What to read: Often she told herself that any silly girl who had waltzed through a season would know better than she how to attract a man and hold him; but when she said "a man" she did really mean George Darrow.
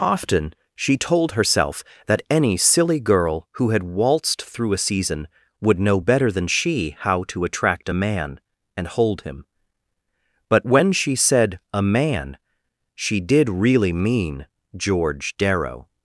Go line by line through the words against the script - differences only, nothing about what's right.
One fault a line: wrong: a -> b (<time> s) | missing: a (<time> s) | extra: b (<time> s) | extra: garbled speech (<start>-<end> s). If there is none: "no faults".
no faults